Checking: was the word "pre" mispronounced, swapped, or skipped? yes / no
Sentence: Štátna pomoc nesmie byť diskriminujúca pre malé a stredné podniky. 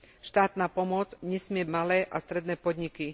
yes